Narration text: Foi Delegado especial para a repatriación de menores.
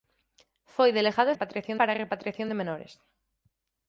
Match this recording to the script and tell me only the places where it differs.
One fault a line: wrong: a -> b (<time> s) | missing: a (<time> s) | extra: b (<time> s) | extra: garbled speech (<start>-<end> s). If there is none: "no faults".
wrong: especial -> repatriación (1.3 s)